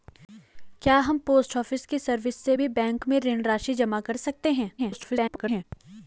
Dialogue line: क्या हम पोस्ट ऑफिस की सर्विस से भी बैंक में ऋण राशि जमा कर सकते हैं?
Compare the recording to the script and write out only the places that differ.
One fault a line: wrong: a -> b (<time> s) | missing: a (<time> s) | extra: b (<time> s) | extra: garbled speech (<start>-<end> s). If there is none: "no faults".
extra: garbled speech (4.8-5.6 s)